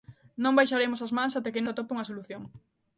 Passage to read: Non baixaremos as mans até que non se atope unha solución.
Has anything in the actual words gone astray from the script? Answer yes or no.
yes